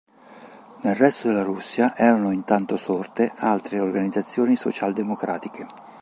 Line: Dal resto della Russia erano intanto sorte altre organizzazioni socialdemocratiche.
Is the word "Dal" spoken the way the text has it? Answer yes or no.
no